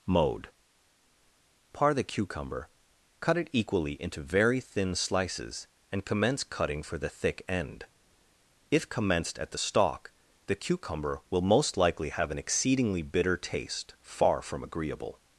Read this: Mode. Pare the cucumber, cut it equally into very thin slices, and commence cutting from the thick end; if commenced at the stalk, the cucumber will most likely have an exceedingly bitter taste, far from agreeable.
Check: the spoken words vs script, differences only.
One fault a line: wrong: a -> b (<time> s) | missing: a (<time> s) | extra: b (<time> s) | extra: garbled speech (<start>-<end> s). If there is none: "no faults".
wrong: from -> for (6.8 s)